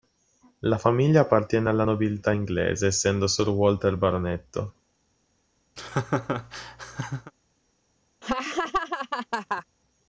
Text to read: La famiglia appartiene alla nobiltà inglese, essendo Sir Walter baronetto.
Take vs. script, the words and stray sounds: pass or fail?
fail